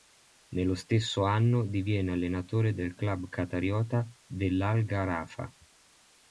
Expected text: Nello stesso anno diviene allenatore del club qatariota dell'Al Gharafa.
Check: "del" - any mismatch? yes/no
no